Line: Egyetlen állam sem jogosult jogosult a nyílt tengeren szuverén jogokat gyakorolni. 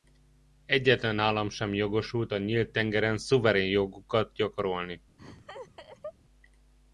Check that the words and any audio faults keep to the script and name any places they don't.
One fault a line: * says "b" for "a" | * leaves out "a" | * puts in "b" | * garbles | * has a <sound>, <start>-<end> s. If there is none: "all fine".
* leaves out "jogosult"
* has a laugh, 5.2-6.1 s